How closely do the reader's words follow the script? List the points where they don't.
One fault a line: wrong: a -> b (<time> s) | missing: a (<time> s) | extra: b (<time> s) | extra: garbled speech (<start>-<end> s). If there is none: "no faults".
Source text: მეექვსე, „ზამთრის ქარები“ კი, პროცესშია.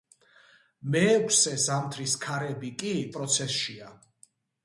no faults